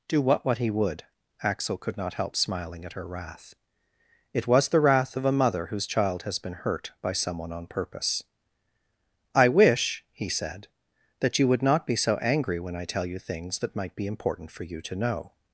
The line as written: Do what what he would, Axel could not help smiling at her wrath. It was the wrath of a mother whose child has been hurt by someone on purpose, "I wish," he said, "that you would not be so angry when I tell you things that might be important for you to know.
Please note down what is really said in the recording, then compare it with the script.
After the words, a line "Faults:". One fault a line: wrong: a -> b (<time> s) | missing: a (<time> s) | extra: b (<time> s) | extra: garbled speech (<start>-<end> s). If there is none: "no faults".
Do what what he would, Axel could not help smiling at her wrath. It was the wrath of a mother whose child has been hurt by someone on purpose, "I wish," he said, "that you would not be so angry when I tell you things that might be important for you to know.
Faults:
no faults